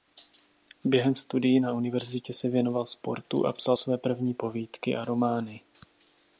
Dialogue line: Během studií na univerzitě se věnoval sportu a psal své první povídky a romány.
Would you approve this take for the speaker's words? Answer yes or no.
yes